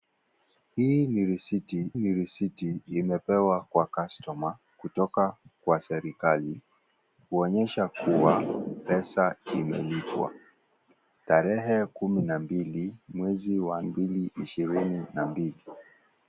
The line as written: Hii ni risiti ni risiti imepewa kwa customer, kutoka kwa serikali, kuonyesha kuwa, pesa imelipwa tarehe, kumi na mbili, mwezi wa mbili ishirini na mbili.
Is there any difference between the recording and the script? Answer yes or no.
no